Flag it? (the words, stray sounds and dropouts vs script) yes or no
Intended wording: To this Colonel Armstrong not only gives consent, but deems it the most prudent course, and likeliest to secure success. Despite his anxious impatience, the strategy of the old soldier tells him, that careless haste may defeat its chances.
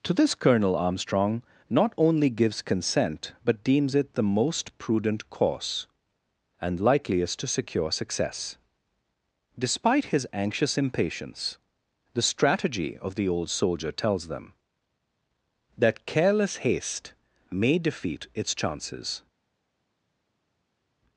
yes